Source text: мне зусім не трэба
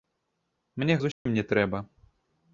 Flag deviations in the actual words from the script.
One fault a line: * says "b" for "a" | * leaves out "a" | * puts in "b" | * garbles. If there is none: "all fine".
all fine